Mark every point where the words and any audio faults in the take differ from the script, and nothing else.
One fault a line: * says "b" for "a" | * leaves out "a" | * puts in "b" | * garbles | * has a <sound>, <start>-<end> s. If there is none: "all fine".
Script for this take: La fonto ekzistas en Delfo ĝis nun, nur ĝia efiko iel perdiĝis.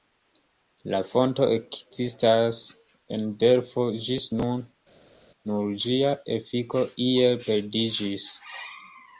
all fine